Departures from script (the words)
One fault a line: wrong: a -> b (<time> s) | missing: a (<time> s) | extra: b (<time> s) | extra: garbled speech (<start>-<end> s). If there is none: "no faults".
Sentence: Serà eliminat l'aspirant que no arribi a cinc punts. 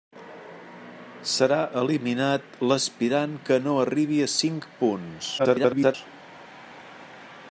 extra: garbled speech (5.4-5.9 s)